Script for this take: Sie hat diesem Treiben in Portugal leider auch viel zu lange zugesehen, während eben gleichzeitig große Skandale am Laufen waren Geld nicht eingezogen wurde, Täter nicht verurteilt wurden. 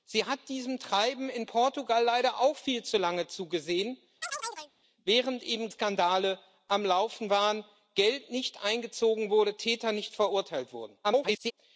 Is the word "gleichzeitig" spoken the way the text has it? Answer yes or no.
no